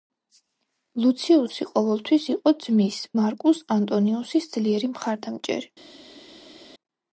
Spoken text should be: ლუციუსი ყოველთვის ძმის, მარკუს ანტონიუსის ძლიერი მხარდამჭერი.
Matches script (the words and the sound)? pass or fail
fail